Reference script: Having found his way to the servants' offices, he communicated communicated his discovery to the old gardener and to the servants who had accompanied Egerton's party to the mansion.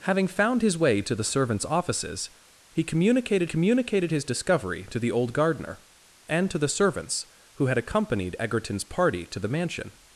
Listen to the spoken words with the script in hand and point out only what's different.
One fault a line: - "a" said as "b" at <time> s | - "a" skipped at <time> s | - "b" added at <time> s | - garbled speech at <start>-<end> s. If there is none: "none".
none